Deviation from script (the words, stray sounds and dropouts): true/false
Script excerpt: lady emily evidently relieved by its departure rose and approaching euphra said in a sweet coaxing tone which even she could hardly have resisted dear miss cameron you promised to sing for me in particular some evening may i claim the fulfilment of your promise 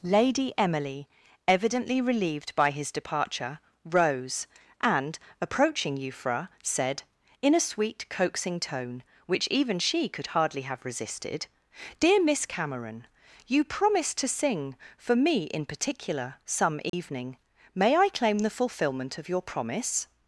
true